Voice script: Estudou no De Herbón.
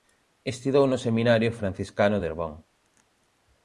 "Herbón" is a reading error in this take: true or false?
false